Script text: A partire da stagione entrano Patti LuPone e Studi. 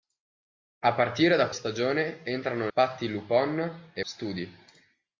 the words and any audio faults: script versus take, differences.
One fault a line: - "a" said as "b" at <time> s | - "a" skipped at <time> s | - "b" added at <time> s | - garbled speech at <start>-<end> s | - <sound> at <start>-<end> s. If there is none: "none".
none